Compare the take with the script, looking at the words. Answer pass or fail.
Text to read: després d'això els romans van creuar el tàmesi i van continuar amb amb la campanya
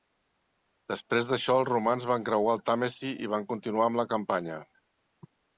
fail